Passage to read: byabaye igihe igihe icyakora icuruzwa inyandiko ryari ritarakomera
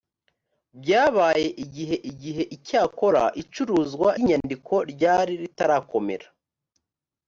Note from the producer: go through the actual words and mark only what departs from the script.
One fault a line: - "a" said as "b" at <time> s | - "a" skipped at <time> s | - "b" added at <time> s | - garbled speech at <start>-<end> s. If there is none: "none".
none